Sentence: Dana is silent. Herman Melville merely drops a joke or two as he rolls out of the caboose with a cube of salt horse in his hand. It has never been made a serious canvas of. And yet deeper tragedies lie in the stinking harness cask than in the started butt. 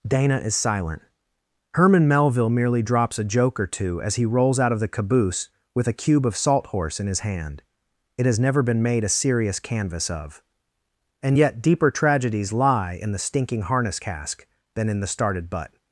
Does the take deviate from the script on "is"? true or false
false